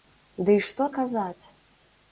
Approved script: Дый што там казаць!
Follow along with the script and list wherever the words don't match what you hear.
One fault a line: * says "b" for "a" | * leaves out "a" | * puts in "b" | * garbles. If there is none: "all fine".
* leaves out "там"